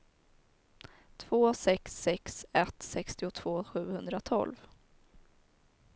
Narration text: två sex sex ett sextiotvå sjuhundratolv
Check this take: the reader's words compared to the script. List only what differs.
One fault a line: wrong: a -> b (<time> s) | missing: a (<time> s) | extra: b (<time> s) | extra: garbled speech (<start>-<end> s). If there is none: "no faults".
no faults